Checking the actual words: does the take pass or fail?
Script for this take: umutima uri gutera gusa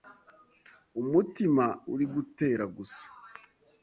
pass